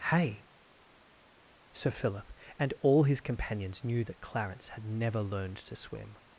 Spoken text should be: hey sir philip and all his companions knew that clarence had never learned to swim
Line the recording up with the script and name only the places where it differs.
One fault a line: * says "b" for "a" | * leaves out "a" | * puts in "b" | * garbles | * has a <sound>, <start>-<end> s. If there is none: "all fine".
all fine